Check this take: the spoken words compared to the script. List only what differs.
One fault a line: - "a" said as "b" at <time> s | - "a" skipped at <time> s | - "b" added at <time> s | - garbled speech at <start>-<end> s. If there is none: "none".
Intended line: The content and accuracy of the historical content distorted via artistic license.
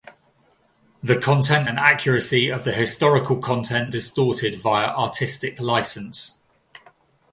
none